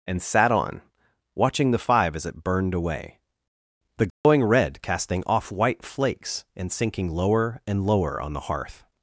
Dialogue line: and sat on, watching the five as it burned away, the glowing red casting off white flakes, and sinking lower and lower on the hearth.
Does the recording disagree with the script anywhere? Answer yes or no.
no